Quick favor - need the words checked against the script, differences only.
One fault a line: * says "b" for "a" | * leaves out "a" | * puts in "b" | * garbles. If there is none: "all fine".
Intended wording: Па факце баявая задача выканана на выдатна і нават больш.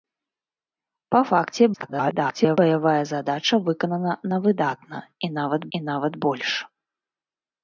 * garbles
* puts in "і нават"